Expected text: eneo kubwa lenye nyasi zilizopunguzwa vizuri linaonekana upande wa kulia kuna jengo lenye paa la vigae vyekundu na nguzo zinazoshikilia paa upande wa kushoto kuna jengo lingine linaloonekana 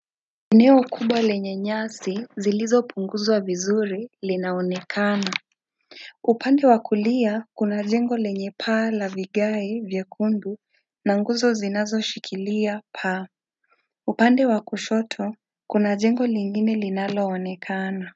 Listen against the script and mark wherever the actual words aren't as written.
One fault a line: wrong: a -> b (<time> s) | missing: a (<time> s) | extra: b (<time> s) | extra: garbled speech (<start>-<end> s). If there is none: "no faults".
no faults